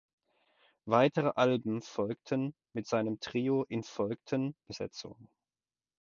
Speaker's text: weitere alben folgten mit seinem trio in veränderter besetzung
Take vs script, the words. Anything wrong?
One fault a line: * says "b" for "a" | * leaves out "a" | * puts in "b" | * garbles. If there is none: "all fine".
* says "folgten" for "veränderter"